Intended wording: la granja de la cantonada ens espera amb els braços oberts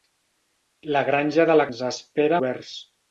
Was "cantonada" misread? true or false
true